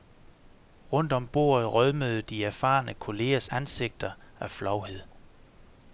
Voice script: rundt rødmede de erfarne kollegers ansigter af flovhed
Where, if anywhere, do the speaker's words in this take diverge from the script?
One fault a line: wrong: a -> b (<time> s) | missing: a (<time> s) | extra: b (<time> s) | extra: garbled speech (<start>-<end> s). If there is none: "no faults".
extra: om bordet (1.1 s)